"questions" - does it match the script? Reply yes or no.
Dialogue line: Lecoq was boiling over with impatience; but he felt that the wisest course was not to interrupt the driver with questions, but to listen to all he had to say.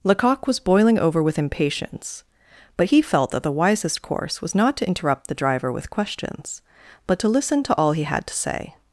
yes